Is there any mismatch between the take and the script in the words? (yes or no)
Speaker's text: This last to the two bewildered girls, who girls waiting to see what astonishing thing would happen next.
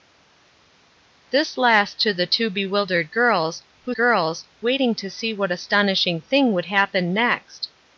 no